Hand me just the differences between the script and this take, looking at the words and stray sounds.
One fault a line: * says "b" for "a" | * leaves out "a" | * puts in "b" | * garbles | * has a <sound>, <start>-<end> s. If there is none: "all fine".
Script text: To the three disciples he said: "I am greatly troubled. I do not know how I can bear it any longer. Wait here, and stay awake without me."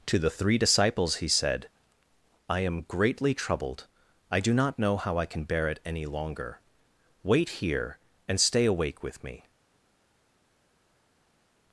* says "with" for "without"